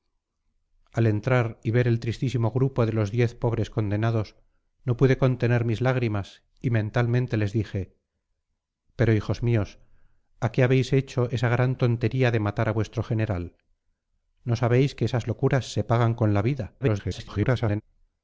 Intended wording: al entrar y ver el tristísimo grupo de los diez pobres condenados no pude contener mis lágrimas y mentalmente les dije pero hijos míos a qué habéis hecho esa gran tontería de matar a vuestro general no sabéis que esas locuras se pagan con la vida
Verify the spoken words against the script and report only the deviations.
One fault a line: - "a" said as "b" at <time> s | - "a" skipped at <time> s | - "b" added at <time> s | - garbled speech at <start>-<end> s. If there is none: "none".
- garbled speech at 16.8-17.8 s